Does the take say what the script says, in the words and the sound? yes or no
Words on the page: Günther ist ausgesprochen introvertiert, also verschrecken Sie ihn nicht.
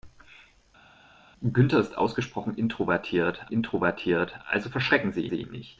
no